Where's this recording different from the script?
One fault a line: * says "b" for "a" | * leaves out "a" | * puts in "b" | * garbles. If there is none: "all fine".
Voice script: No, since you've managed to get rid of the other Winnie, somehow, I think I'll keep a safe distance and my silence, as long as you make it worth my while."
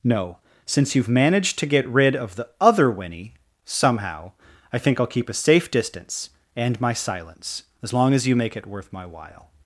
all fine